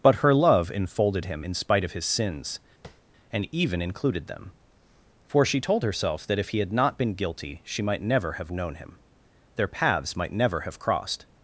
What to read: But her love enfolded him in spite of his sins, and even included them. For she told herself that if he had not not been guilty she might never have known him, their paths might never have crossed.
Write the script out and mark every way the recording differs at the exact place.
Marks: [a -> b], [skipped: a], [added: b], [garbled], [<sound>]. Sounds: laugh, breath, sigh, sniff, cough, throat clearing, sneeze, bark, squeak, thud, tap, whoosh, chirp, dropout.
But her love enfolded him in spite of his sins, [tap] and even included them. For she told herself that if he had not [skipped: not] been guilty she might never have known him, their paths might never have crossed.